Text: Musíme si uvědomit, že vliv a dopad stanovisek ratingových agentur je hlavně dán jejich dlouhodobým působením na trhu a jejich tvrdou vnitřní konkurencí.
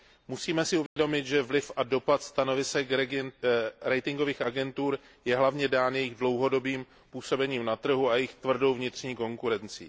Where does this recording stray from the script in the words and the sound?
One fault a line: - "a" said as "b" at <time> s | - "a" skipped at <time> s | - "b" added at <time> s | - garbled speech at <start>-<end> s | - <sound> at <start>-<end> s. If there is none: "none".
- dropout at 0.9-1.0 s